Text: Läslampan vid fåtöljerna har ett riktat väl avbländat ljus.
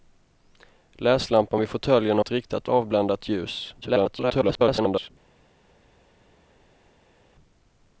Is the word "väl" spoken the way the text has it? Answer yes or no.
no